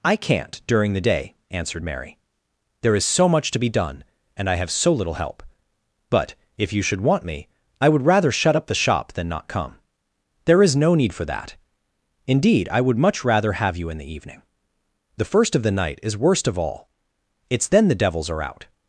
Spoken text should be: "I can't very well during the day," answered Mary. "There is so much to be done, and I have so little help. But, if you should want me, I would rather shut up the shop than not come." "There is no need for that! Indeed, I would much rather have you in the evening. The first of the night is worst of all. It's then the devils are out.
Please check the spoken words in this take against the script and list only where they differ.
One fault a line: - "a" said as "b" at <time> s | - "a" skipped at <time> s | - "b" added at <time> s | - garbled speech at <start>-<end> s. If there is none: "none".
- "very well" skipped at 0.6 s